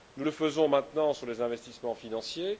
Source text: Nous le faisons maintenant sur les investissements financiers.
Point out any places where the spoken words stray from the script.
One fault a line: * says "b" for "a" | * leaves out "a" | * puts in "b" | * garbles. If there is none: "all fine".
all fine